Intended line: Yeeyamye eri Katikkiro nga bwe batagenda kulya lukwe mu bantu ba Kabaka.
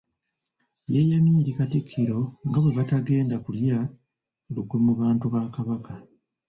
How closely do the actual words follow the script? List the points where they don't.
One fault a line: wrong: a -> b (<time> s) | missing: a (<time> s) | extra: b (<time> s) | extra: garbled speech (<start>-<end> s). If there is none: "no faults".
no faults